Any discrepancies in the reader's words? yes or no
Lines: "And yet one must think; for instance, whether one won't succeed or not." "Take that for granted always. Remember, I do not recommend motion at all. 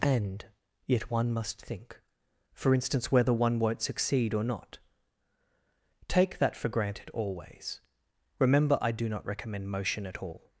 no